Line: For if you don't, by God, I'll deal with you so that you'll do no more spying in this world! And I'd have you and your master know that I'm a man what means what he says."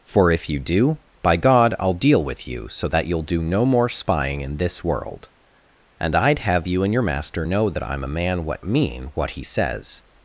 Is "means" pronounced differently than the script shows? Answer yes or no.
yes